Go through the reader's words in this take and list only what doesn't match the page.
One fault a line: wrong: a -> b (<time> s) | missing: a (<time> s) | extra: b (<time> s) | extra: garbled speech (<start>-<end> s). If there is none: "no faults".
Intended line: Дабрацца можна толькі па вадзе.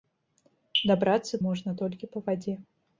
no faults